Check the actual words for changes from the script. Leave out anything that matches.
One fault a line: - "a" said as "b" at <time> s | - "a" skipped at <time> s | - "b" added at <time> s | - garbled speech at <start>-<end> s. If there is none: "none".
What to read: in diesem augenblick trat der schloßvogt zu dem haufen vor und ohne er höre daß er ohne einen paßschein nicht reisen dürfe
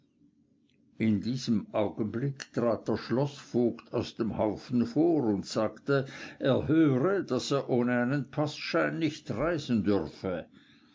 - "zu" said as "aus" at 3.9 s
- "ohne" said as "sagte" at 5.5 s